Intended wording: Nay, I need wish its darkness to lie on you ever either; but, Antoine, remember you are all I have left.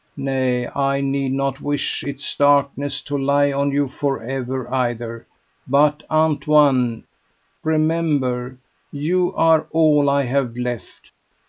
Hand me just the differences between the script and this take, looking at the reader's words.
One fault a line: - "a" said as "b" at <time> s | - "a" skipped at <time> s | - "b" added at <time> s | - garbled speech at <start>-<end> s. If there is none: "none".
- "not" added at 1.3 s
- "for" added at 3.9 s